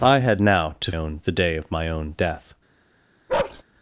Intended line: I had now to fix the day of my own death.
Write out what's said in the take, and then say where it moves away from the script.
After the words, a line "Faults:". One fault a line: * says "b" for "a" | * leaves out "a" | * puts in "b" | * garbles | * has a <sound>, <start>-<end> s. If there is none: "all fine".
I had now to own the day of my own death.
Faults:
* says "own" for "fix"
* has a bark, 3.3-3.6 s